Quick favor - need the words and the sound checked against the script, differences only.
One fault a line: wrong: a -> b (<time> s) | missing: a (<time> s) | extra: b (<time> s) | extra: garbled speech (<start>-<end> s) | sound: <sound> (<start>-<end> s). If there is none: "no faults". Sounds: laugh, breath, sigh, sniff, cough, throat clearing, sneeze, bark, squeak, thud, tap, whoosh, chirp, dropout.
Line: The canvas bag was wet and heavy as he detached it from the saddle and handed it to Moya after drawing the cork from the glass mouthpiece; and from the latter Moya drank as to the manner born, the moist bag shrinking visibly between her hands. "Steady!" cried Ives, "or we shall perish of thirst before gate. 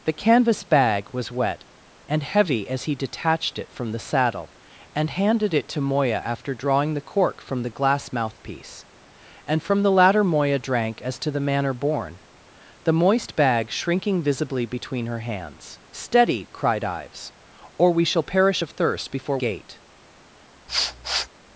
sound: sniff (20.7-21.3 s)